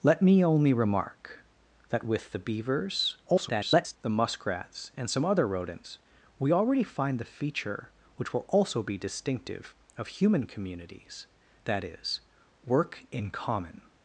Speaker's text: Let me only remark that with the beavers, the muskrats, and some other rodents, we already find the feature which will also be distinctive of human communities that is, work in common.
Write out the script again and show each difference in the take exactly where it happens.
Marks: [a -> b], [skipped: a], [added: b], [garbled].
Let me only remark that with the beavers, [garbled] the muskrats, and some other rodents, we already find the feature which will also be distinctive of human communities that is, work in common.